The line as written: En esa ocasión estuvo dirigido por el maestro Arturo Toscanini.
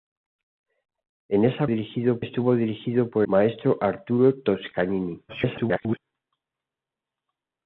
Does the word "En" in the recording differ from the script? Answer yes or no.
no